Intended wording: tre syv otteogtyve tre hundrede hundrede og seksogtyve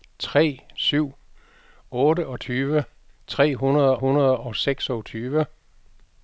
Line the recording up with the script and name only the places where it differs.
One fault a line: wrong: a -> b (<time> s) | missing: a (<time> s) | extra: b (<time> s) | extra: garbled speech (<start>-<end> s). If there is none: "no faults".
no faults